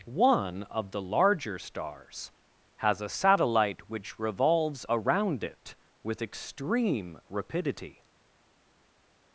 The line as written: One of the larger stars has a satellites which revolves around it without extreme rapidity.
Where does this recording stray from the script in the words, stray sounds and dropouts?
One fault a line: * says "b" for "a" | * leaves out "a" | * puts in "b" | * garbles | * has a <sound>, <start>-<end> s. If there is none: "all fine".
* says "satellite" for "satellites"
* says "with" for "without"